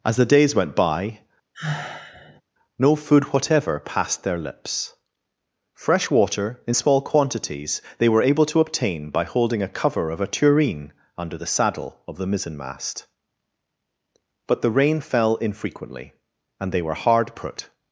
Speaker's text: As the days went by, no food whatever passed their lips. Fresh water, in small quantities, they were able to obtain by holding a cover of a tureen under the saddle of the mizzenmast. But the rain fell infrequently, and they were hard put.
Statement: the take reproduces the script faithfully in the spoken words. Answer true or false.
true